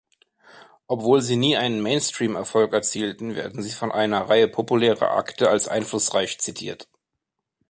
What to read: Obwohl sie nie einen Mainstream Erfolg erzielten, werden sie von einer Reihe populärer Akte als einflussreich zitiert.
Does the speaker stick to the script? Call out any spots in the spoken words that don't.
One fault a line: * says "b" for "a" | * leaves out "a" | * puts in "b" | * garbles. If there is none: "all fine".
all fine